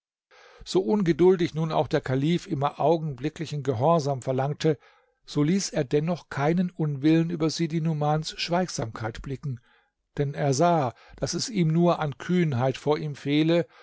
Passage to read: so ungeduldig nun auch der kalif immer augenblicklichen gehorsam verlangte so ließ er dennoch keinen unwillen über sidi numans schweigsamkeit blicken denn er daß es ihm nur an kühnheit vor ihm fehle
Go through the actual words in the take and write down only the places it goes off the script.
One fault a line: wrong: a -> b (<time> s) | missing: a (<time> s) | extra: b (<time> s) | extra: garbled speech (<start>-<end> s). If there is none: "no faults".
extra: sah (10.6 s)